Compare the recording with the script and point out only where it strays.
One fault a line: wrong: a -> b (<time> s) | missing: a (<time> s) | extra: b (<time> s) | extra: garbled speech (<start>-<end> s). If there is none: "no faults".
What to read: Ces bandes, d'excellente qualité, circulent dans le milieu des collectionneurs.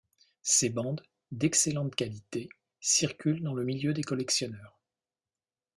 no faults